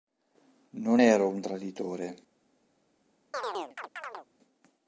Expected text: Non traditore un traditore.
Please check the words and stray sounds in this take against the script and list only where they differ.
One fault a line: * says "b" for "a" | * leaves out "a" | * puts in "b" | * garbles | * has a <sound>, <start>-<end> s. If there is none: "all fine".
* says "ero" for "traditore"
* has a chirp, 3.3-4.3 s